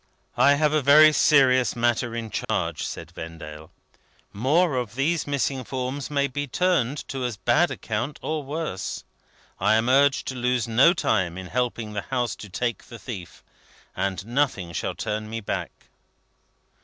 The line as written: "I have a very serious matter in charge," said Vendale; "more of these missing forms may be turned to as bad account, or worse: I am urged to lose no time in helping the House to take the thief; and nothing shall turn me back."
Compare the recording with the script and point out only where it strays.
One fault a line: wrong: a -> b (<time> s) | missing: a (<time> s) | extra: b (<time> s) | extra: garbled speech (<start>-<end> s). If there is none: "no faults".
no faults